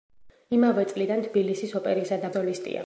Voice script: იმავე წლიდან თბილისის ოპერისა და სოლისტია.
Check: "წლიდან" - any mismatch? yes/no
no